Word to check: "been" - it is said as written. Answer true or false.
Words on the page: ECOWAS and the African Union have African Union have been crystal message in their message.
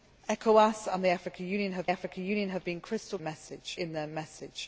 true